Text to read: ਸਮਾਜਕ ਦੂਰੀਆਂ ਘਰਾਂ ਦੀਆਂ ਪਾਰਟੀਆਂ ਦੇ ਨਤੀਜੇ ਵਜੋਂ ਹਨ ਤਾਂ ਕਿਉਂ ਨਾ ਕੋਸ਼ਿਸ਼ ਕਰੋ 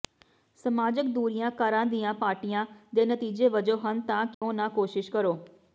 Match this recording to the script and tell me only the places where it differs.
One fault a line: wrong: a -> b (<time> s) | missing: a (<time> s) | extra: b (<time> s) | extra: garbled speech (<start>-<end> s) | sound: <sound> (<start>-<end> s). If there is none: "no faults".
sound: dropout (4.3-4.4 s)